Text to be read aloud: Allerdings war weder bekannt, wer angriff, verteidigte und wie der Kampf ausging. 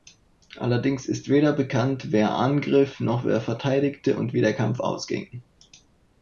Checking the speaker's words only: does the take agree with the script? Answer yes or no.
no